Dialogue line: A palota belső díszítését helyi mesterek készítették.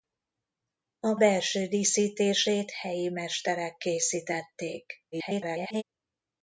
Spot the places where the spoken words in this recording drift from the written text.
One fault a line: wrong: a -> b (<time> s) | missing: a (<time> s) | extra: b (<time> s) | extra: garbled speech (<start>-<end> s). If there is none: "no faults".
missing: palota (1.1 s)
extra: garbled speech (5.1-5.8 s)